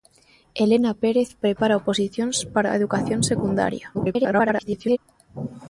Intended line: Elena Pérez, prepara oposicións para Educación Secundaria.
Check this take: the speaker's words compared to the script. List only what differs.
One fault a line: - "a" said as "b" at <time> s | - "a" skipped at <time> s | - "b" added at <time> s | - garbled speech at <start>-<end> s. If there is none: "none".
- garbled speech at 3.9-5.0 s